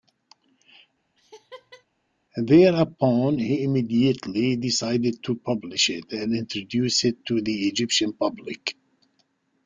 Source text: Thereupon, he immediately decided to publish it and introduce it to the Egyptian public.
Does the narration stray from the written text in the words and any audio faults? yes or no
yes